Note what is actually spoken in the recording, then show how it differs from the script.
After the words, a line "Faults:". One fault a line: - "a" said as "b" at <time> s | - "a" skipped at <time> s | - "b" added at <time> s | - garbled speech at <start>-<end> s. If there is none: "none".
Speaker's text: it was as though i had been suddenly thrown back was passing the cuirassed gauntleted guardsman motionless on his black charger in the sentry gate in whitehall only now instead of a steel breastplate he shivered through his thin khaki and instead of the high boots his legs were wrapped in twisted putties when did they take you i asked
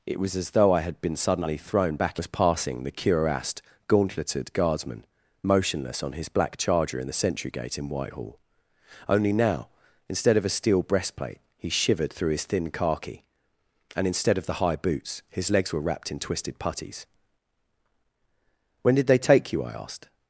it was as though i had been suddenly thrown back was passing the cuirassed gauntleted guardsman motionless on his black charger in the sentry gate in whitehall only now instead of a steel breastplate he shivered through his thin khaki and instead of the high boots his legs were wrapped in twisted putties when did they take you i asked
Faults:
none